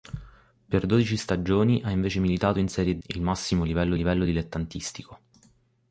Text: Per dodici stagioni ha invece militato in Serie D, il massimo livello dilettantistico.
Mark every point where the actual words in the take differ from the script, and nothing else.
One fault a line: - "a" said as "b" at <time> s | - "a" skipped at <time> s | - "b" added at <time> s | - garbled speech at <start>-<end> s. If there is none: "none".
- "D" skipped at 3.0 s
- "livello" added at 3.9 s